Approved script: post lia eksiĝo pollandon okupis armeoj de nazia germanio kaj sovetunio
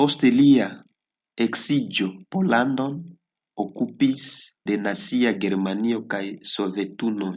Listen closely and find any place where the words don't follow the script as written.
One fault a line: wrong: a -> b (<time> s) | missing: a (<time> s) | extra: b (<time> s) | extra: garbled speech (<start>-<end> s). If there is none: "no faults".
missing: armeoj (4.2 s)